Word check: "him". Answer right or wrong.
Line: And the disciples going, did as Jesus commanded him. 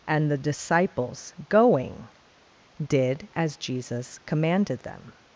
wrong